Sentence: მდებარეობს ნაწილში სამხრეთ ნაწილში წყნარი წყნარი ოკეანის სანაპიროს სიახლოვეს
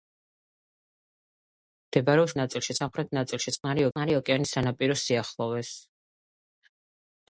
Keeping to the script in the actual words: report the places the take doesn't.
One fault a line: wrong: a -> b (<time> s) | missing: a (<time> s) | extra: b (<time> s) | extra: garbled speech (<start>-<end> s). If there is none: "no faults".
no faults